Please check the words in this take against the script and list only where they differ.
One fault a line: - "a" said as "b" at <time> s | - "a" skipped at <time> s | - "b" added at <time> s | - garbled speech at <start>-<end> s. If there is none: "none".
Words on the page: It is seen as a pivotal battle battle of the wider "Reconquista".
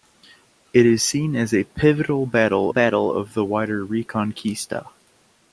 none